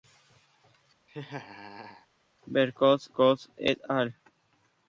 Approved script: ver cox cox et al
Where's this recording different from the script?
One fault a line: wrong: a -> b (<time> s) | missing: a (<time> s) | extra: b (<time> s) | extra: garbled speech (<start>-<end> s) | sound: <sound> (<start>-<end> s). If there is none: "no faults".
sound: laugh (1.1-2.1 s)